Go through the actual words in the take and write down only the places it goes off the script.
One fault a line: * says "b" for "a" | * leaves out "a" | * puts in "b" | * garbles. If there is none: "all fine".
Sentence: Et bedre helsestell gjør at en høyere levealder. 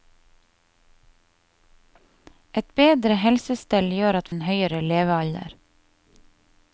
all fine